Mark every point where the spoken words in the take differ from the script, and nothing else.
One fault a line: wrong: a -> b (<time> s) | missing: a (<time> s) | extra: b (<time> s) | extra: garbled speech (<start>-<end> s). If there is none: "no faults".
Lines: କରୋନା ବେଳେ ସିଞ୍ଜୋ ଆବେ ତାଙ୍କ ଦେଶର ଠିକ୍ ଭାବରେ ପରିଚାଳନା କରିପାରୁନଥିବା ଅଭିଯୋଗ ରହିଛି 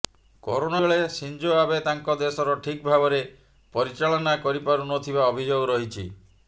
no faults